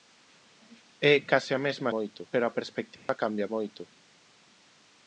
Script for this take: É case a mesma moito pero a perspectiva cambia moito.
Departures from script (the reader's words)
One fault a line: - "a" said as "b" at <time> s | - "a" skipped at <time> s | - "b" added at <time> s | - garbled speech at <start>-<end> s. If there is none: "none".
none